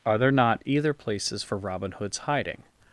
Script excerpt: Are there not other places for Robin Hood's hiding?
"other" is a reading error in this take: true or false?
true